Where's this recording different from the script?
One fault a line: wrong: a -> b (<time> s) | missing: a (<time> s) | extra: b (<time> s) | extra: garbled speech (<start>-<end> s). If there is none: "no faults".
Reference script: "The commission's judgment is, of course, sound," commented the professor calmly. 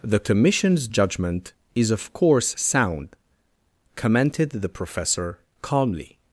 no faults